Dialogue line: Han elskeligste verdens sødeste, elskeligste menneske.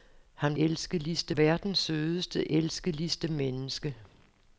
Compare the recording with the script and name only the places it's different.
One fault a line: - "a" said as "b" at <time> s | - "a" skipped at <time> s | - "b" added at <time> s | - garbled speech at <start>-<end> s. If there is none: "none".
none